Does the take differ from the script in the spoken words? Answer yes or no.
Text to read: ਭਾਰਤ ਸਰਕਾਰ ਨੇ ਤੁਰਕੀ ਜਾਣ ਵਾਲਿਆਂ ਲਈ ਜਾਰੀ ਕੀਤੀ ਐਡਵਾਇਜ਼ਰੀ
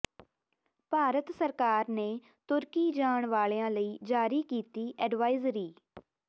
no